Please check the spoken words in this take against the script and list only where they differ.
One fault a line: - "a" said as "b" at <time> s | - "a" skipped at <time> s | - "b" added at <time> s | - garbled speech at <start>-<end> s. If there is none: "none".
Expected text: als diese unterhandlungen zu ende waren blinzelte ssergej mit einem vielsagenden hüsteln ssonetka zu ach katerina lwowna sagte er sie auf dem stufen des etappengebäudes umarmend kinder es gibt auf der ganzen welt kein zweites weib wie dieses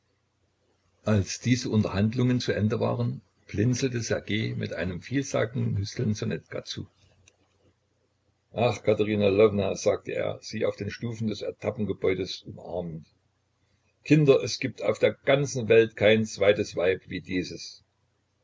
- "dem" said as "den" at 10.8 s